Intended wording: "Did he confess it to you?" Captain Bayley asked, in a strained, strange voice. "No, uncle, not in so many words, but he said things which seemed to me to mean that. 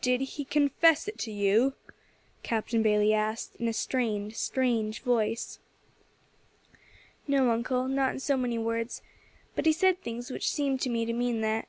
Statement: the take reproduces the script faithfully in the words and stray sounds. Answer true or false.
true